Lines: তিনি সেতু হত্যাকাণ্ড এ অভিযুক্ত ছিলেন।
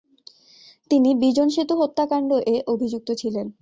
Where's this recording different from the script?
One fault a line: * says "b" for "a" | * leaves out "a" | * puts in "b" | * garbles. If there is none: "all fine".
* puts in "বিজন"